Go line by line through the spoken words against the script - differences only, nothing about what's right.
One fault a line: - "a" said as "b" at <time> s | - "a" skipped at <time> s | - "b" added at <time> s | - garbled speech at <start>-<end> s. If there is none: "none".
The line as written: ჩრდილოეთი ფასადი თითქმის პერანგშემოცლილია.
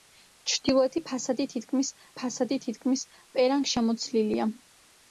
- "ფასადი თითქმის" added at 2.2 s